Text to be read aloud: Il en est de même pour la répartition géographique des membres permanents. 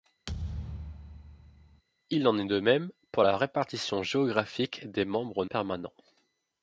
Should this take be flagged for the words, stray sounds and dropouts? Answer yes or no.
yes